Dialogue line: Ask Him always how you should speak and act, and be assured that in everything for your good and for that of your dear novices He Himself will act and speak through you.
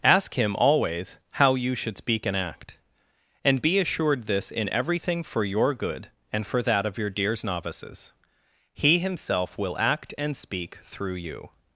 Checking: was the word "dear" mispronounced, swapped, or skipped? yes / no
yes